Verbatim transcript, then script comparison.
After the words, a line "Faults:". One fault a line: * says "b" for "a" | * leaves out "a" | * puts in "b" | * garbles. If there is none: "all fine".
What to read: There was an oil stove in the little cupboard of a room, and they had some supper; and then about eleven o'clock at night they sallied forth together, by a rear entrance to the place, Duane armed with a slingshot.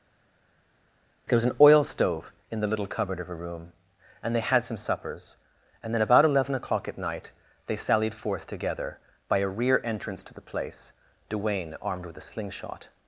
There was an oil stove in the little cupboard of a room, and they had some suppers; and then about eleven o'clock at night they sallied forth together, by a rear entrance to the place, Duane armed with a slingshot.
Faults:
* says "suppers" for "supper"